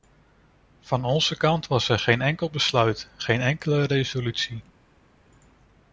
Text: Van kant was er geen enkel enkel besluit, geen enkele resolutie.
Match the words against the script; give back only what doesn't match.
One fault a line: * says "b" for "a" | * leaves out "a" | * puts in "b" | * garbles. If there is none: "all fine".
* puts in "onze"
* leaves out "enkel"